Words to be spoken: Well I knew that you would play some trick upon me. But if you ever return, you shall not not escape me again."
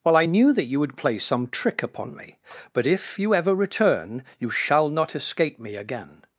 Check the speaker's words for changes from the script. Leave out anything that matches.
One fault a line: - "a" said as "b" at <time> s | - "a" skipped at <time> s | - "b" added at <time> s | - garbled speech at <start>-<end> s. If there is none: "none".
- "not" skipped at 5.1 s